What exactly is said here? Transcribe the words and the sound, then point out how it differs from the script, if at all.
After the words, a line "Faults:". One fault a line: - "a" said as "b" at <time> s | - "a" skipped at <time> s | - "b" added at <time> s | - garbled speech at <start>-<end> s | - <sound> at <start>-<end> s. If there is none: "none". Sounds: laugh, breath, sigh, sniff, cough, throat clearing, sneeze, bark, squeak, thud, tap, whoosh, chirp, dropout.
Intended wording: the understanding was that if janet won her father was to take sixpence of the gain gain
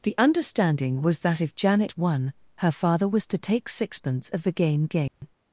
the understanding was that if janet won her father was to take sixpence of the gain gain
Faults:
- dropout at 5.1-5.2 s